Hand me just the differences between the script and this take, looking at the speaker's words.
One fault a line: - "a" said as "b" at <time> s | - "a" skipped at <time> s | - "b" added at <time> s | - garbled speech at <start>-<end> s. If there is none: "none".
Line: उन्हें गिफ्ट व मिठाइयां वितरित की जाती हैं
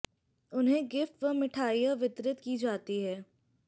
none